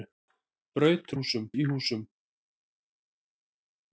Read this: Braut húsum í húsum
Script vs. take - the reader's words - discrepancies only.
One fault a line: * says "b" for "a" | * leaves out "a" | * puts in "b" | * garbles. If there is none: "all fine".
all fine